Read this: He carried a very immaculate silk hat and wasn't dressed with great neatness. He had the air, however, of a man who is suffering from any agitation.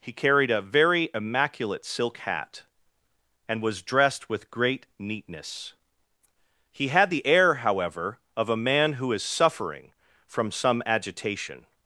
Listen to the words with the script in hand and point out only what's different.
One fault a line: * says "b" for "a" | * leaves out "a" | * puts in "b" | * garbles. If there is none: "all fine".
* says "was" for "wasn't"
* says "some" for "any"